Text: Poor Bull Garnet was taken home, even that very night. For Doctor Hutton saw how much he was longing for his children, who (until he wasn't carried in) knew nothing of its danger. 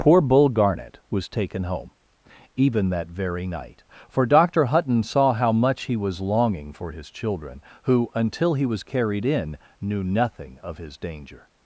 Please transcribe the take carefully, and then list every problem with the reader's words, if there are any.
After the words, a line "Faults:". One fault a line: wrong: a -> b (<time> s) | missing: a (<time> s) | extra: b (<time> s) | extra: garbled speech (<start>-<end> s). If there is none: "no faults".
Poor Bull Garnet was taken home, even that very night. For Doctor Hutton saw how much he was longing for his children, who (until he was carried in) knew nothing of his danger.
Faults:
wrong: wasn't -> was (8.7 s)
wrong: its -> his (10.8 s)